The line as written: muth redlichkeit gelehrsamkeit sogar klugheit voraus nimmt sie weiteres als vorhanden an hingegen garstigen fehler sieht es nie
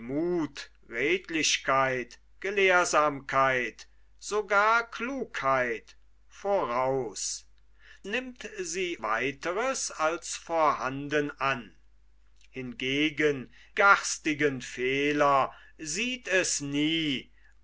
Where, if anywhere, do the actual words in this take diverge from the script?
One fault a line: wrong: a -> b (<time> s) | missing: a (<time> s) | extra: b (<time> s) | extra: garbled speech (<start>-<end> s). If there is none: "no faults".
no faults